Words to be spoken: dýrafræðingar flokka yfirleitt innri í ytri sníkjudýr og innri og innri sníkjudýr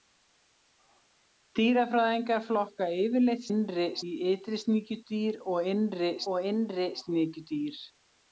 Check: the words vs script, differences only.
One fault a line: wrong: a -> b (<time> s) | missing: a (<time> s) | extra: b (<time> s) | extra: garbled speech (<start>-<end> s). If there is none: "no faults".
no faults